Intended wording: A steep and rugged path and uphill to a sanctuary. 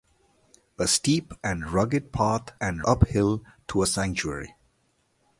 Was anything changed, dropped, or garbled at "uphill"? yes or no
no